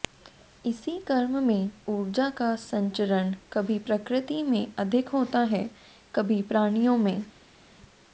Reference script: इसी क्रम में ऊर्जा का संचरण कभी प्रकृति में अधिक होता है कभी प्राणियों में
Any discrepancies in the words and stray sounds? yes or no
no